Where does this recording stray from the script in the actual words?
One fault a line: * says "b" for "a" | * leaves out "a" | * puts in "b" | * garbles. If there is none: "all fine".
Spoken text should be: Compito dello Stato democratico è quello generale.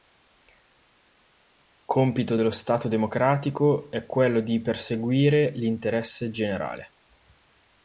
* puts in "di perseguire l'interesse"